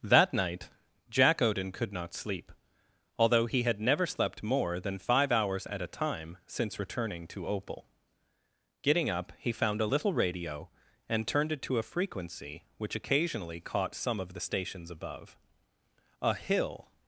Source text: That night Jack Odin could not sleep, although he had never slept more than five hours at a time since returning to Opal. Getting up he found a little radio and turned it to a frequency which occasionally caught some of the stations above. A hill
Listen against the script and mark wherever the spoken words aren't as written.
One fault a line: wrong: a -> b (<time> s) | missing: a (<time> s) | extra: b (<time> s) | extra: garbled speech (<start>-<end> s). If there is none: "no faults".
no faults